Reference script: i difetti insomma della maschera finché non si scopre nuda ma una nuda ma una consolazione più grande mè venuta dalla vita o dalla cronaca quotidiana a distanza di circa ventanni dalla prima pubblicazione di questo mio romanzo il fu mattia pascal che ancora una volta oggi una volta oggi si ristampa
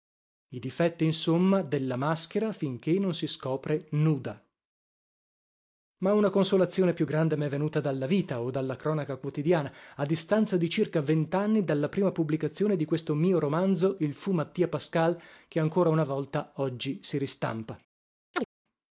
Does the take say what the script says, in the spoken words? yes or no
no